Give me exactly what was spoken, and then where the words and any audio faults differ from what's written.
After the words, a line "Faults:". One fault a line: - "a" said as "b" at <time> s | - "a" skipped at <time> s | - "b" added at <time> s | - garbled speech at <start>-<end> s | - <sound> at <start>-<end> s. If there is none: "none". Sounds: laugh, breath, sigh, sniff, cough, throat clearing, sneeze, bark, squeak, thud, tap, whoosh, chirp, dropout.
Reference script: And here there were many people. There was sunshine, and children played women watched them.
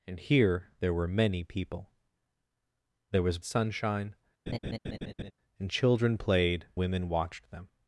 And here there were many people. There was sunshine, and children played women watched them.
Faults:
- laugh at 4.5-5.3 s